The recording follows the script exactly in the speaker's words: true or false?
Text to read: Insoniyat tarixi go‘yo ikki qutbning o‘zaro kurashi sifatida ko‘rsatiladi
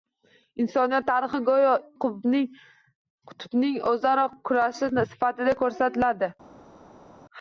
false